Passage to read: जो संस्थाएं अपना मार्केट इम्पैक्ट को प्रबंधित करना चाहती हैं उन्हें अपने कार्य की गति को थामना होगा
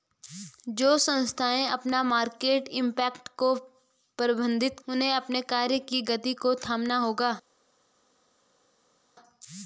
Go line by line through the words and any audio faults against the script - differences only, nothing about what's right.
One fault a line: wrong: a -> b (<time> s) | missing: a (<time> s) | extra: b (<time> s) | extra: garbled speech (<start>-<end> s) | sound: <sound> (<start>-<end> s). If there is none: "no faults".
missing: करना चाहती हैं (4.8 s)